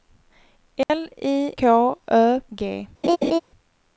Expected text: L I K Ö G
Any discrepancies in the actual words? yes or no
no